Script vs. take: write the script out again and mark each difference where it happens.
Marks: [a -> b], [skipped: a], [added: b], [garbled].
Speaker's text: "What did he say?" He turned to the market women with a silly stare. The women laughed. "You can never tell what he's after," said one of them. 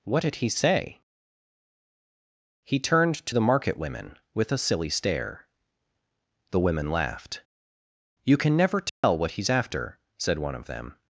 "What did he say?" He turned to the market women with a silly stare. The women laughed. "You can never tell what he's after," said one of them.